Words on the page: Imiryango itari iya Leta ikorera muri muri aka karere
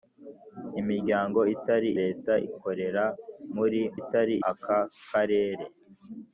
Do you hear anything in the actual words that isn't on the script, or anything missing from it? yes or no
yes